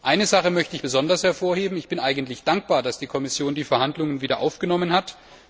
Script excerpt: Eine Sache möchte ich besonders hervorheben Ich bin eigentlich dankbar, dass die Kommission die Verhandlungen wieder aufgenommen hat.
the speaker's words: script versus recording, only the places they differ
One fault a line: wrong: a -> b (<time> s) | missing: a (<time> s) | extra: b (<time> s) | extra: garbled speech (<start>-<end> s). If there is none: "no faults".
no faults